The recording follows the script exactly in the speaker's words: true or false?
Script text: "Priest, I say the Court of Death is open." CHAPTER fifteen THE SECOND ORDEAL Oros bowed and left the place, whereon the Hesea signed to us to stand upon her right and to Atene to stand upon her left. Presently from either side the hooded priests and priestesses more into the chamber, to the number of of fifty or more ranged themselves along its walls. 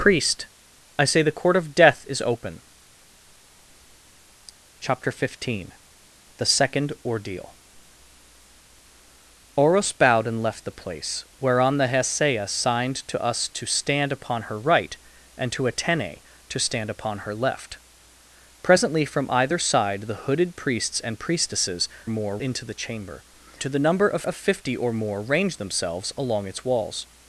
true